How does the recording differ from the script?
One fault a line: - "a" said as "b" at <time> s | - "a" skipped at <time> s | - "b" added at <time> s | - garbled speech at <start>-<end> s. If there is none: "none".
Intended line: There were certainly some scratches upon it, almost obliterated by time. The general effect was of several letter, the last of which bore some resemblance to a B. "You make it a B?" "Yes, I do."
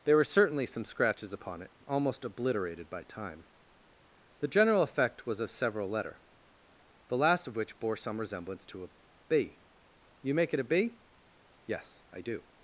none